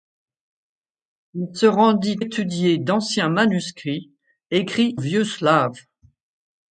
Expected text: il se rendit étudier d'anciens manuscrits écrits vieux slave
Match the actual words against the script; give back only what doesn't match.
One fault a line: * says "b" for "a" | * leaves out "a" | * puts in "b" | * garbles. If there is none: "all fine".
all fine